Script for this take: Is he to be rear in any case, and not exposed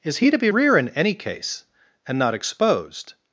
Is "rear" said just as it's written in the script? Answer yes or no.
yes